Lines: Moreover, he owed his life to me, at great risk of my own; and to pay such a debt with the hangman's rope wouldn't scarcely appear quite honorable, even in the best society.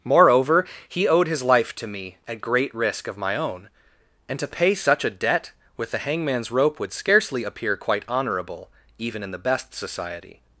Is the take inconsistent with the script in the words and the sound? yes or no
yes